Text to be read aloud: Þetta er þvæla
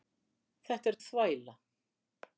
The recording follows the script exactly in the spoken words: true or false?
true